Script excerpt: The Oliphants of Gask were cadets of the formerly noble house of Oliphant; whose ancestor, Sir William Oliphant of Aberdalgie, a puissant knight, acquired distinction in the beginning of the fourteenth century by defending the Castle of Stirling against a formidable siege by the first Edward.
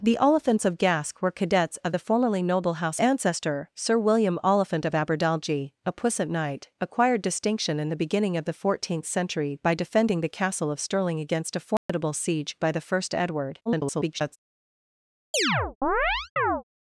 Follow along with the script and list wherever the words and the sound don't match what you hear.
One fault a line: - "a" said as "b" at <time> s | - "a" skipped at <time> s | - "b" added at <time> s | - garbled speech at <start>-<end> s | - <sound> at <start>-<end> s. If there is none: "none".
- "of Oliphant whose" skipped at 3.0 s
- dropout at 11.8-11.9 s
- garbled speech at 13.7-14.4 s
- chirp at 15.3-16.6 s